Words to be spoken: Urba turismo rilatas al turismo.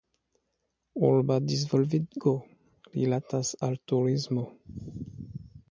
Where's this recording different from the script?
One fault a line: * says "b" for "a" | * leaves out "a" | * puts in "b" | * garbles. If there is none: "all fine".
* says "disvolvigo" for "turismo"